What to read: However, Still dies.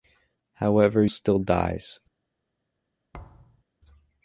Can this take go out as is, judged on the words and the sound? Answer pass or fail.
fail